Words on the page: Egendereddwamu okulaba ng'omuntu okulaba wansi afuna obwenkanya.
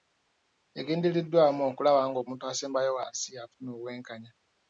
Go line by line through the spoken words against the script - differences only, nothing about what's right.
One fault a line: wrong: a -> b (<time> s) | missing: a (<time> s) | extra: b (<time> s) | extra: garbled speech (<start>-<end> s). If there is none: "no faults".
wrong: okulaba -> asembayo (2.5 s)